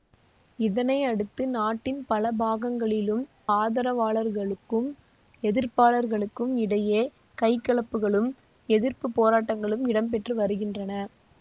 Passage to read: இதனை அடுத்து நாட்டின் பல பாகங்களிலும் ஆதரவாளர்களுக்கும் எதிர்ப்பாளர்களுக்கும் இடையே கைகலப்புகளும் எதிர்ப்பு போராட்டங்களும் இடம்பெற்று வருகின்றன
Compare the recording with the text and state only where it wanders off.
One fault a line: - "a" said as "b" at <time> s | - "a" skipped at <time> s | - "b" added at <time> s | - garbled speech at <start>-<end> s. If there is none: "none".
none